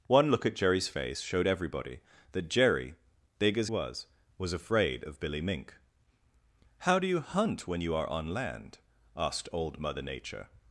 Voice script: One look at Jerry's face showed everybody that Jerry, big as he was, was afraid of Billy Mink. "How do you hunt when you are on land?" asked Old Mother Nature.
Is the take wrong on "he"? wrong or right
wrong